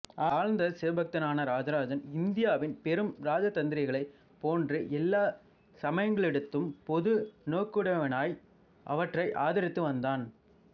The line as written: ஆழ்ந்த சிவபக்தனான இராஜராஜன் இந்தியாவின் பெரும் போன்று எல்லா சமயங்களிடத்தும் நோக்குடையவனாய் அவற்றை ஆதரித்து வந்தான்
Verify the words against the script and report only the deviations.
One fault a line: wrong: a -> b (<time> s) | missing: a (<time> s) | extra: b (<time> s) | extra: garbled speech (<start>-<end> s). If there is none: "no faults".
extra: இராஜதந்திரிகளைப் (3.2 s)
extra: பொது (6.9 s)